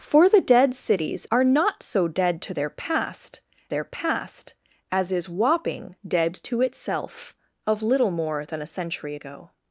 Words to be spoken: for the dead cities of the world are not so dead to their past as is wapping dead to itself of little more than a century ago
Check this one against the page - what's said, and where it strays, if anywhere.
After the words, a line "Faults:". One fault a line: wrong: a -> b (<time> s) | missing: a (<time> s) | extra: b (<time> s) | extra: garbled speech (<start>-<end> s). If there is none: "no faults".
for the dead cities are not so dead to their past their past as is wapping dead to itself of little more than a century ago
Faults:
missing: of the world (1.2 s)
extra: their past (3.7 s)